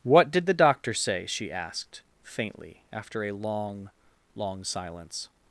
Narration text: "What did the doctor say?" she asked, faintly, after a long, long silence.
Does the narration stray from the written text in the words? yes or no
no